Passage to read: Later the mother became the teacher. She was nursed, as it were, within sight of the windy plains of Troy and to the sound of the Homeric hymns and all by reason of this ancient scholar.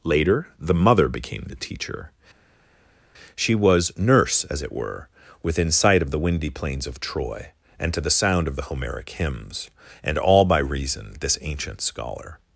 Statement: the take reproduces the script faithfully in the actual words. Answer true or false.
false